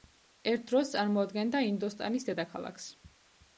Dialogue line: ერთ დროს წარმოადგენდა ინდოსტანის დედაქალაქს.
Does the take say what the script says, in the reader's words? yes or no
yes